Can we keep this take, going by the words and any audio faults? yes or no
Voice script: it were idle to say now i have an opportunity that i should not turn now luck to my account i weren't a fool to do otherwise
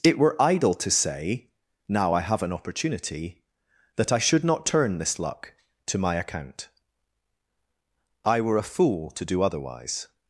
no